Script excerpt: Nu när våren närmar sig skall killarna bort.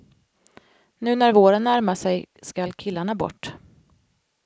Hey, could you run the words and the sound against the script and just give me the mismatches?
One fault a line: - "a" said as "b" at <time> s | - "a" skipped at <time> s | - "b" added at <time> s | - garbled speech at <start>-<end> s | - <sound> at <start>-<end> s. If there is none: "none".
none